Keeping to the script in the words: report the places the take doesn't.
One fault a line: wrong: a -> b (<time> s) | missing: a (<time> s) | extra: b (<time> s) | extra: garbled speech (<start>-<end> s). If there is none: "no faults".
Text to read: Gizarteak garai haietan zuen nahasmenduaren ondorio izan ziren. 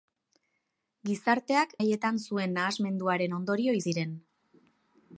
missing: garai (1.8 s)
missing: izan (3.8 s)